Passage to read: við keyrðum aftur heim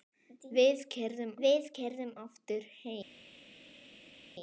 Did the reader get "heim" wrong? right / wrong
right